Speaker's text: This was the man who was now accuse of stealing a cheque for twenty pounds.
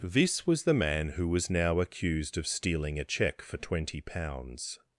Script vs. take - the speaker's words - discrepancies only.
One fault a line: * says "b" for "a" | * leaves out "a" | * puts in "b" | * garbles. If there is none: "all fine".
* says "accused" for "accuse"